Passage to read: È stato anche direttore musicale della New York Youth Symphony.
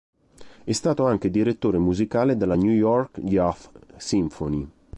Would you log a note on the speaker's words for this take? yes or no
no